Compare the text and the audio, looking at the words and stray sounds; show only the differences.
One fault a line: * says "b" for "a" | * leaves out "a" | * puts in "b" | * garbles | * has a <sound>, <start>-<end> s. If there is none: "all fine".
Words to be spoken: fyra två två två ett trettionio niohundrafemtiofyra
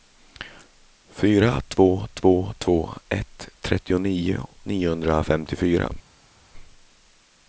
all fine